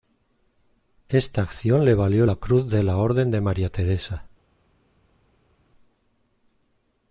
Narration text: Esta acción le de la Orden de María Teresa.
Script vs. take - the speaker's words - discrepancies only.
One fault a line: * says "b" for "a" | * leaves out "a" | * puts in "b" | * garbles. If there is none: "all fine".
* puts in "valió la Cruz"